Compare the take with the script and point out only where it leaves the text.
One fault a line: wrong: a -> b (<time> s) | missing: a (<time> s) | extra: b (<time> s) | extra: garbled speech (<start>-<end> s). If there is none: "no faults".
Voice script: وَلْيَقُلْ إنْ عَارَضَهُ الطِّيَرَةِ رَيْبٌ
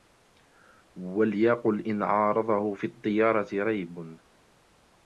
extra: فِي (2.7 s)